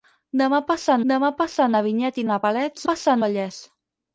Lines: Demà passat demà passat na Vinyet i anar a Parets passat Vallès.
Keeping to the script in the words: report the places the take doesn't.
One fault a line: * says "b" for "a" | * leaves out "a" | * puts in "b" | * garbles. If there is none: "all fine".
all fine